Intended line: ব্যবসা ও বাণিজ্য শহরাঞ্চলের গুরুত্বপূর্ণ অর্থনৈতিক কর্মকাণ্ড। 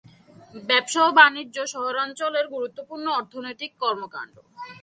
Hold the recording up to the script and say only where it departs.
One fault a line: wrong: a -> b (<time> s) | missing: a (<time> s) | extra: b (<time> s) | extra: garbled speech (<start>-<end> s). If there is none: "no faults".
no faults